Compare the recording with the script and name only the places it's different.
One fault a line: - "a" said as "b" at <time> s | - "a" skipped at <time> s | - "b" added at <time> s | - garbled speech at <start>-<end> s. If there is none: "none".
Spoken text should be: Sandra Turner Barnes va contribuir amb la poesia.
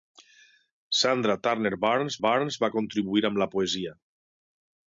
- "Barnes" added at 2.3 s